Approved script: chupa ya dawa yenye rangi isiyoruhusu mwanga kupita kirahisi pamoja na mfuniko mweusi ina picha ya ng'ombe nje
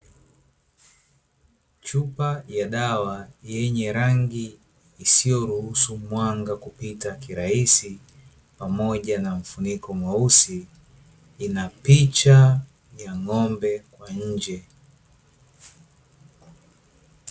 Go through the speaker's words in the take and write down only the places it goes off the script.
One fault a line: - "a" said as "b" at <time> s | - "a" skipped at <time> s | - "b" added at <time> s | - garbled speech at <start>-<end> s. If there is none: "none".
- "kwa" added at 13.9 s